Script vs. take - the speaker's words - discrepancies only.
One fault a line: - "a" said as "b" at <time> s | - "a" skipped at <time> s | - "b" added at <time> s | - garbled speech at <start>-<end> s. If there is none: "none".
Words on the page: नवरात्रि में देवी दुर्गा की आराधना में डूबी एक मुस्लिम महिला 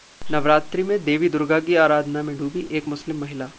none